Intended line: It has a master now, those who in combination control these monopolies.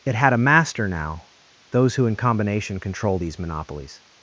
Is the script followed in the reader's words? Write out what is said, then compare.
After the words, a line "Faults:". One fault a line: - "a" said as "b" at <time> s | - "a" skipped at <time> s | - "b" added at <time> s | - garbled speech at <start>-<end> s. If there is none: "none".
It had a master now, those who in combination control these monopolies.
Faults:
- "has" said as "had" at 0.1 s